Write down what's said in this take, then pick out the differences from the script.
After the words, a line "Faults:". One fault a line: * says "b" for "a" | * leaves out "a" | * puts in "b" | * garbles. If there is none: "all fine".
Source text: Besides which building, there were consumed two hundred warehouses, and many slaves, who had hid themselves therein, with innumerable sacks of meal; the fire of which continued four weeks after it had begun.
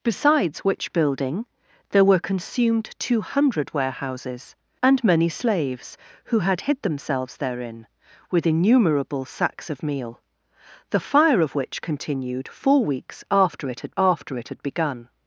Besides which building, there were consumed two hundred warehouses, and many slaves, who had hid themselves therein, with innumerable sacks of meal; the fire of which continued four weeks after it had after it had begun.
Faults:
* puts in "after it had"